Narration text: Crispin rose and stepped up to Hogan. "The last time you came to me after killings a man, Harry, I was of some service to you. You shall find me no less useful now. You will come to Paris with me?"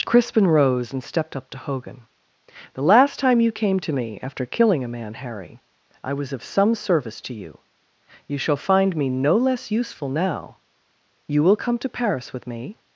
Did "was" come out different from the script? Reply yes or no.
no